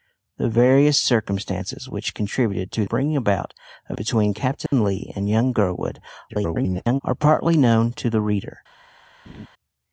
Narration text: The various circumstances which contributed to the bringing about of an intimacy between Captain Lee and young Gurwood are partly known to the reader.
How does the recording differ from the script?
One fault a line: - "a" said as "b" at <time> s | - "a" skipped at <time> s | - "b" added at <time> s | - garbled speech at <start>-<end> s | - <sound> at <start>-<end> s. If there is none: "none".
- "the" skipped at 2.9 s
- "an intimacy" skipped at 4.0 s
- dropout at 4.7-4.7 s
- garbled speech at 6.3-7.0 s
- laugh at 9.3-9.5 s